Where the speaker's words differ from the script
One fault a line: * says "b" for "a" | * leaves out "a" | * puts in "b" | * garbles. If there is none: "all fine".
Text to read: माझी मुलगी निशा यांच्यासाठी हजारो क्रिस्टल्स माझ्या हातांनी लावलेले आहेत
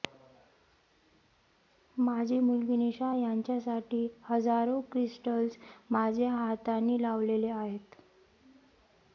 all fine